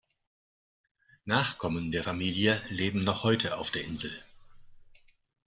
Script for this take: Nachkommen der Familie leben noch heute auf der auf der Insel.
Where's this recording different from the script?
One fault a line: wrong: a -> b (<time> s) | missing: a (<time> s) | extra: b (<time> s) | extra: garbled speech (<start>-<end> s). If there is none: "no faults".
missing: auf der (3.8 s)